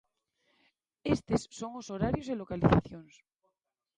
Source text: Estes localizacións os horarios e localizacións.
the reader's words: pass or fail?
fail